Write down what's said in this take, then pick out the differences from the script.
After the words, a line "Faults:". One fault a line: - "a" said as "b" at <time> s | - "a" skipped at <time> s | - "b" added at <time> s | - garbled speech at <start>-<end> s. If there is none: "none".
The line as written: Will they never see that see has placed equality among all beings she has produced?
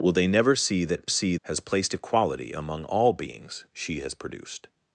Will they never see that see has placed equality among all beings she has produced?
Faults:
none